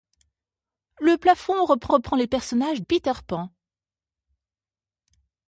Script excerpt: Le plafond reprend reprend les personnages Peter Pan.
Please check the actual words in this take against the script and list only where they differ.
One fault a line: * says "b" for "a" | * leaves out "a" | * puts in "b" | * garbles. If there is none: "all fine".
all fine